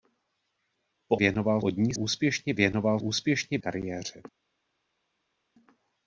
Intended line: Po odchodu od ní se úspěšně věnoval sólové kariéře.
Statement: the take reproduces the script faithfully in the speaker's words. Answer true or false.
false